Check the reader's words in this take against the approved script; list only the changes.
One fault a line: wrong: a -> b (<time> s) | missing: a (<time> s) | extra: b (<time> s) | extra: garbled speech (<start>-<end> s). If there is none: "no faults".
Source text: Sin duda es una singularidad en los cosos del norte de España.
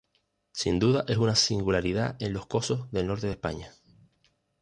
no faults